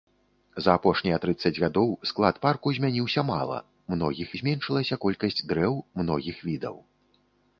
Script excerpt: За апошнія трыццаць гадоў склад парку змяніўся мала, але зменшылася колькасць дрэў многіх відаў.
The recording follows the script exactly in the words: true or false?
false